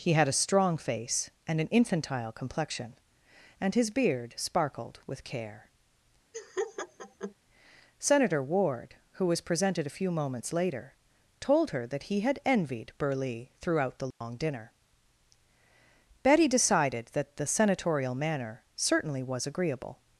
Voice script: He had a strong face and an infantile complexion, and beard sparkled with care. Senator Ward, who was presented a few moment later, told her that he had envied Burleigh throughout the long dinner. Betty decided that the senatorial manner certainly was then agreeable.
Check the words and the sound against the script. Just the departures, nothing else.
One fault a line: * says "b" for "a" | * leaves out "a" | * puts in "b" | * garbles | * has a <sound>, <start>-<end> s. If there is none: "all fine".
* puts in "his"
* has a laugh, 6.3-7.3 s
* says "moments" for "moment"
* has a dropout, 14.1-14.2 s
* leaves out "then"